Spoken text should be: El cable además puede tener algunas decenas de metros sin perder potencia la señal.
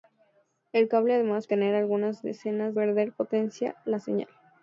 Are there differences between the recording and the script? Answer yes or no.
yes